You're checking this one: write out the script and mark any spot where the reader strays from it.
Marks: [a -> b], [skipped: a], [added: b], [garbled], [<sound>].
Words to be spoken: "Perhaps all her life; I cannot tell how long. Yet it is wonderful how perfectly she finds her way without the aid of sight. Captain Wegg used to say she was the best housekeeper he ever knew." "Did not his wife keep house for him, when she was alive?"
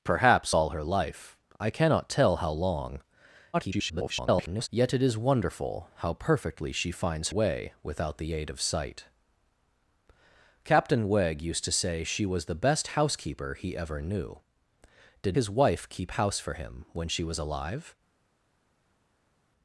"Perhaps all her life; I cannot tell how long. [garbled] Yet it is wonderful how perfectly she finds [skipped: her] way without the aid of sight. Captain Wegg used to say she was the best housekeeper he ever knew." "Did [skipped: not] his wife keep house for him, when she was alive?"